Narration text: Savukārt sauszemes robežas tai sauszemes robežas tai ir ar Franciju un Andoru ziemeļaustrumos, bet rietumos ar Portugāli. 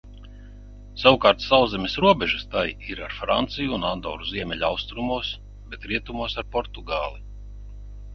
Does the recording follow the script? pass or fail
fail